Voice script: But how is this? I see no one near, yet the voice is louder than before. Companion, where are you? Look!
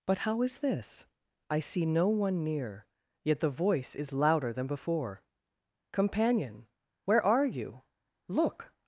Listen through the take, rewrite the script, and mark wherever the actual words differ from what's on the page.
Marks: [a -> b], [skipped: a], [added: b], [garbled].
But how is this? I see no one near, yet the voice is louder than before. Companion, where are you? Look!